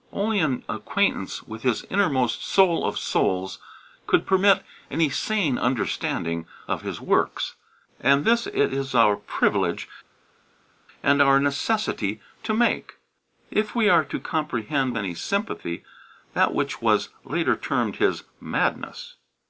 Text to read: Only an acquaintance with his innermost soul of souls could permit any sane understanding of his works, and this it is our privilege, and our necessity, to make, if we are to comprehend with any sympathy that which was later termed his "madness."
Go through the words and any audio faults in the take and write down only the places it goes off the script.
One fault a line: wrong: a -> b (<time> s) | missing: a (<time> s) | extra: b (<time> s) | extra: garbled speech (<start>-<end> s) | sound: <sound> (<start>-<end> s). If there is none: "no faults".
missing: with (14.9 s)